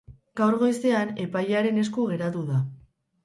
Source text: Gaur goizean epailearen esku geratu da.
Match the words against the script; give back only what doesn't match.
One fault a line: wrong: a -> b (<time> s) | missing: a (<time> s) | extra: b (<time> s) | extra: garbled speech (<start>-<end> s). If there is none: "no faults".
no faults